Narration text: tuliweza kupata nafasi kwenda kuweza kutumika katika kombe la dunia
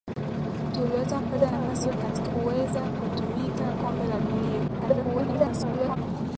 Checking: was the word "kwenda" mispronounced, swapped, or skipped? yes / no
yes